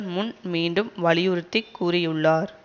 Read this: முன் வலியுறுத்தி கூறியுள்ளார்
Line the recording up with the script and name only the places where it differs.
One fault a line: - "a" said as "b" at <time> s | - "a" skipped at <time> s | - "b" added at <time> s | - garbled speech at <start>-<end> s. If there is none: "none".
- "மீண்டும்" added at 0.5 s